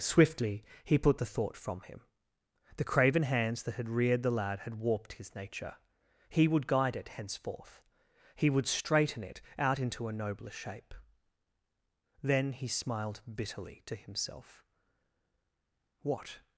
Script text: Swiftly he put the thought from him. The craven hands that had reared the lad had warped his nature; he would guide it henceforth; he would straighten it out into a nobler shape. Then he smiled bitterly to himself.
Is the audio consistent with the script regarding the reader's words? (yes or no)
no